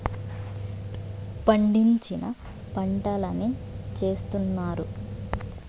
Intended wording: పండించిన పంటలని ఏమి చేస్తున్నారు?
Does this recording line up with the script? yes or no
no